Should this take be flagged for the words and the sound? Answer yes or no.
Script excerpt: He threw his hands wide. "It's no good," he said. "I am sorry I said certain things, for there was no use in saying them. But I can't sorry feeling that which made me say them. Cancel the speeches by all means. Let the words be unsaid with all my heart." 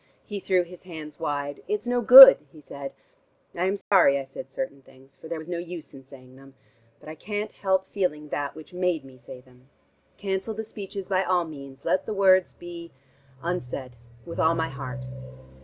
yes